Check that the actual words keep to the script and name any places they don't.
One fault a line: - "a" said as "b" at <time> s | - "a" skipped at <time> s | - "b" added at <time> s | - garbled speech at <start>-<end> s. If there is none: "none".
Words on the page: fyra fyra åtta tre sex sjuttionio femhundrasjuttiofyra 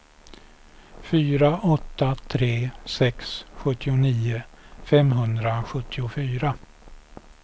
- "fyra" skipped at 1.6 s